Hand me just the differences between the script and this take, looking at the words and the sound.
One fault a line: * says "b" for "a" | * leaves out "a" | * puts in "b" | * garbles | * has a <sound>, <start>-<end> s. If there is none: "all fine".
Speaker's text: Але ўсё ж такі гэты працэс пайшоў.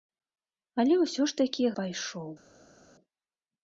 * leaves out "гэты працэс"